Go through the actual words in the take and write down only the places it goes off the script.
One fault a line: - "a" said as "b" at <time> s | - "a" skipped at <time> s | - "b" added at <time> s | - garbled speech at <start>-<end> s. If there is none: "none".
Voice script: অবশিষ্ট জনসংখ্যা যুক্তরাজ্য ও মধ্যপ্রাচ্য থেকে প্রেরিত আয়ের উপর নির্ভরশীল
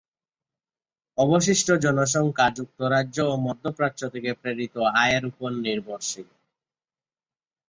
none